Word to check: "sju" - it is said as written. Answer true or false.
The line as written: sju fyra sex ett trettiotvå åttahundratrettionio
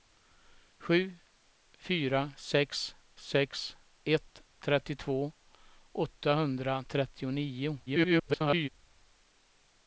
true